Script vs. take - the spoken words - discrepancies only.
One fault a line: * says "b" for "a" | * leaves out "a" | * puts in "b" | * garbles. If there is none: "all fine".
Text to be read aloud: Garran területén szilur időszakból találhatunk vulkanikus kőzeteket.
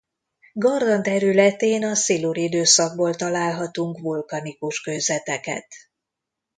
* puts in "a"